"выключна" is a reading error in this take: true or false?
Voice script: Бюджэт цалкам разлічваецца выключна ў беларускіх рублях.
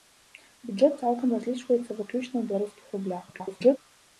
false